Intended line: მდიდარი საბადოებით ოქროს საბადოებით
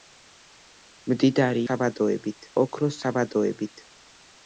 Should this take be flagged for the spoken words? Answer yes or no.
no